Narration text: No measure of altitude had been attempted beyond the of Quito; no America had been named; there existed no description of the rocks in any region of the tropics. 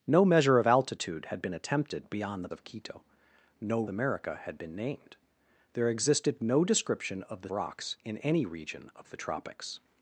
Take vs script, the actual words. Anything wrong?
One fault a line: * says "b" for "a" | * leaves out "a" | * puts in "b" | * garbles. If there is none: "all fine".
all fine